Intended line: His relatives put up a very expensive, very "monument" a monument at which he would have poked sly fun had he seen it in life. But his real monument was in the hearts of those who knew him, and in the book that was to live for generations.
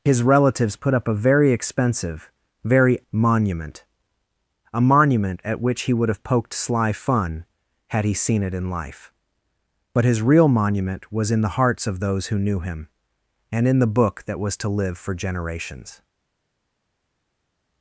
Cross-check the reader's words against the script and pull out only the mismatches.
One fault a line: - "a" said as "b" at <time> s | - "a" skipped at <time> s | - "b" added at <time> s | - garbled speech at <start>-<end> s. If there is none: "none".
none